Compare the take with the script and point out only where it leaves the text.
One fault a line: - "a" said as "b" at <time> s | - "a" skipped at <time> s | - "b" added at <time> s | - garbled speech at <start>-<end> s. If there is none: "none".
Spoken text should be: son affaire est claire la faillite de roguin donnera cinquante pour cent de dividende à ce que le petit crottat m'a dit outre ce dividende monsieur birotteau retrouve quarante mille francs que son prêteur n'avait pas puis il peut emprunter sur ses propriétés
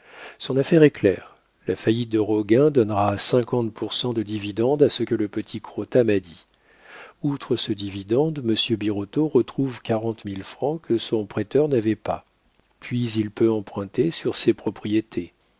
none